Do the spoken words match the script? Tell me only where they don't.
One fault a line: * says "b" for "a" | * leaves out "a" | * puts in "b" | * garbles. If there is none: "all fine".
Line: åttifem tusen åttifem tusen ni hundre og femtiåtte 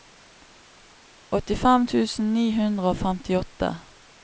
* leaves out "åttifem tusen"